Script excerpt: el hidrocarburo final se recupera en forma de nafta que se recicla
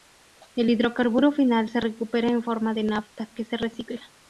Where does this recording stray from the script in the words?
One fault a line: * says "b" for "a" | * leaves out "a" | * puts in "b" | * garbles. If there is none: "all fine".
all fine